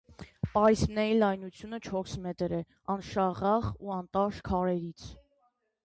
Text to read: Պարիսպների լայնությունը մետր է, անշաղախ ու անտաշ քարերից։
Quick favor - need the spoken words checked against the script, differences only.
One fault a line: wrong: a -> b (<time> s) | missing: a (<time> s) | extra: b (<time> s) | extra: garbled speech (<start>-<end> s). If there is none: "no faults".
extra: չորս (1.9 s)